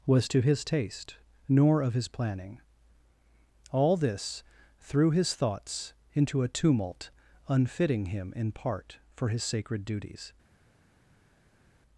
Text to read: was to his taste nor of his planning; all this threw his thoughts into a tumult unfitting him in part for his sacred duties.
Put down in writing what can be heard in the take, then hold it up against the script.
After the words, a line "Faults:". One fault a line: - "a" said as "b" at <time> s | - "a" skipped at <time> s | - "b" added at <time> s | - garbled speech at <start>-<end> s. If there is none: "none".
was to his taste nor of his planning; all this threw his thoughts into a tumult unfitting him in part for his sacred duties.
Faults:
none